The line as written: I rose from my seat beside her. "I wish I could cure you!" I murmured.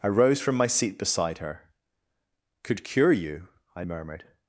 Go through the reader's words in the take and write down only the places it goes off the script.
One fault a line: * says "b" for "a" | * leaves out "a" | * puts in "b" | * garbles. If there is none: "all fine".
* leaves out "I wish I"